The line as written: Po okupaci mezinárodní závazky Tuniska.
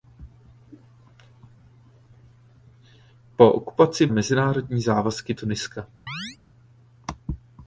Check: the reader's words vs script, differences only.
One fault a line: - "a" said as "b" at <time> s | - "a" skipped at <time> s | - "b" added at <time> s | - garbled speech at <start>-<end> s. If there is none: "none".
none